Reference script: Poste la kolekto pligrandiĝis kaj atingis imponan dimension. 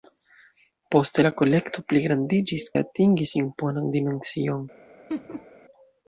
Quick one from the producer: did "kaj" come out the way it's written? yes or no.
no